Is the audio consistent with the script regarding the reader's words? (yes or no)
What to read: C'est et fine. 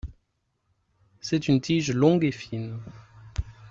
no